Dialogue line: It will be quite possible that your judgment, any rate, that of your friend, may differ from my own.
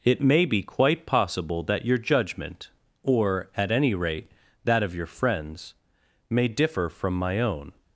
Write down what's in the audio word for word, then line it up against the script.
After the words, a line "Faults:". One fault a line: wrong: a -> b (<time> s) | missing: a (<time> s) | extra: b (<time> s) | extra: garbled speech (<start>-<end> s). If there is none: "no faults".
It may be quite possible that your judgment, or, at any rate, that of your friends, may differ from my own.
Faults:
wrong: will -> may (0.2 s)
extra: or at (3.0 s)
wrong: friend -> friends (5.0 s)